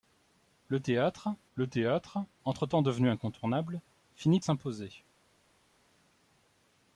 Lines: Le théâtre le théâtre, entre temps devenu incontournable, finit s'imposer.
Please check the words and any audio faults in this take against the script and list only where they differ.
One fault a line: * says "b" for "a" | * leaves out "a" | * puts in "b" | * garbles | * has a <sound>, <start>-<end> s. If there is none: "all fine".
all fine